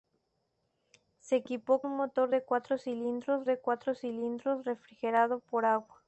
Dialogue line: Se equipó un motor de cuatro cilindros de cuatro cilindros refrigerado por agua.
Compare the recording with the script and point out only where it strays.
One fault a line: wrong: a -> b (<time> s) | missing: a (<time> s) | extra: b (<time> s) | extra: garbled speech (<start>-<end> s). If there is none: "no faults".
no faults